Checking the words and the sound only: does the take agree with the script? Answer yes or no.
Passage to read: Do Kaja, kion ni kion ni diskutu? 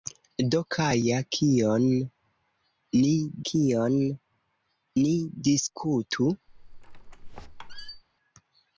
no